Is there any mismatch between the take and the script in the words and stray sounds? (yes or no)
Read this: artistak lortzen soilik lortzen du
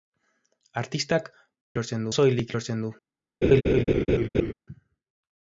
yes